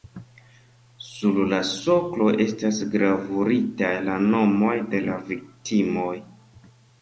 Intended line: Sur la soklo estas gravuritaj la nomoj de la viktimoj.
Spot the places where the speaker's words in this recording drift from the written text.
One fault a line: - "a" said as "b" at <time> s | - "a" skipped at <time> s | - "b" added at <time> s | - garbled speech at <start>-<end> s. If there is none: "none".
none